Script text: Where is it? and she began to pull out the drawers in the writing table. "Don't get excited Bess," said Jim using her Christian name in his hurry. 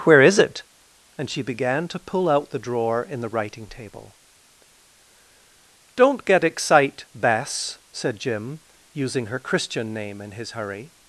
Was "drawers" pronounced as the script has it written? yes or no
no